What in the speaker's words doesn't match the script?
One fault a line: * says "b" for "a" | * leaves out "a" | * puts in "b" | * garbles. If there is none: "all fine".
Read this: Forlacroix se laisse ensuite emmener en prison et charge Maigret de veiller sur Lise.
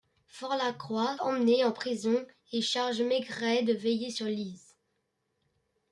* leaves out "se laisse ensuite"